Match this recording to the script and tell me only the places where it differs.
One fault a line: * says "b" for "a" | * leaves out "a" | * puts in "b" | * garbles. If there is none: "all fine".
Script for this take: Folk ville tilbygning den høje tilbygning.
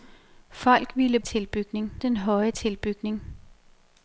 all fine